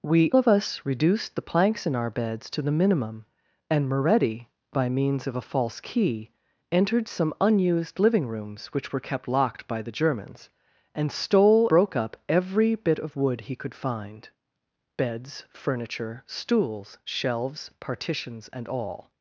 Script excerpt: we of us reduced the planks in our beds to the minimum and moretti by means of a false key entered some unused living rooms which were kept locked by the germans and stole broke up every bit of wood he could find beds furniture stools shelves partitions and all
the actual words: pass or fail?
pass